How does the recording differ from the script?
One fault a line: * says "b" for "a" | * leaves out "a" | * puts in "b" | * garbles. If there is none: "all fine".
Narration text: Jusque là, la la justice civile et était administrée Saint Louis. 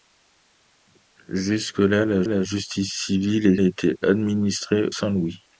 all fine